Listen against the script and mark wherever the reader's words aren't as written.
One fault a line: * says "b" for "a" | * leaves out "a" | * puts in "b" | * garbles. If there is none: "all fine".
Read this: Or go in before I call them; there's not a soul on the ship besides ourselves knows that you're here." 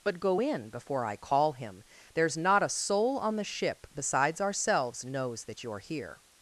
* says "But" for "Or"
* says "him" for "them"